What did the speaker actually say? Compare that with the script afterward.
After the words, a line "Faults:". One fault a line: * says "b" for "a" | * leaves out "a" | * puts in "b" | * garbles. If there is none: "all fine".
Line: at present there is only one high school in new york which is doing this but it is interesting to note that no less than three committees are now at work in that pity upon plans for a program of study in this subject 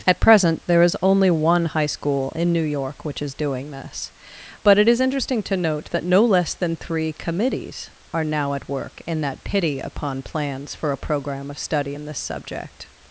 at present there is only one high school in new york which is doing this but it is interesting to note that no less than three committees are now at work in that pity upon plans for a program of study in this subject
Faults:
all fine